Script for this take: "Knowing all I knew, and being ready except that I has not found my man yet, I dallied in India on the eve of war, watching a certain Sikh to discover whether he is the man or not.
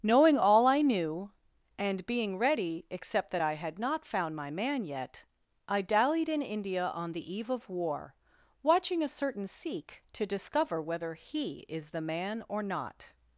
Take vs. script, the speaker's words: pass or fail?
fail